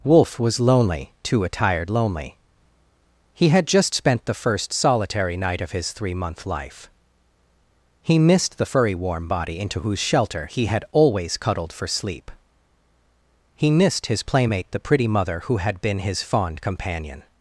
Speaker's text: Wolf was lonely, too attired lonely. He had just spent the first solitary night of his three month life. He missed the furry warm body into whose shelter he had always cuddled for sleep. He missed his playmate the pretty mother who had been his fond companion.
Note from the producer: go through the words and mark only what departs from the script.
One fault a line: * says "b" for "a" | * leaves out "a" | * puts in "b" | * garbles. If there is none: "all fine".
all fine